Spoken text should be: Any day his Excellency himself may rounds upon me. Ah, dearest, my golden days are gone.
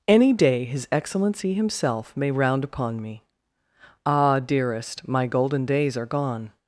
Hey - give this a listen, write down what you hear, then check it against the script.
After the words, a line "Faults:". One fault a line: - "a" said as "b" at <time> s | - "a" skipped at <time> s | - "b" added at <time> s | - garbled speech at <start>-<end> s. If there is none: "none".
Any day his Excellency himself may round upon me. Ah, dearest, my golden days are gone.
Faults:
- "rounds" said as "round" at 2.3 s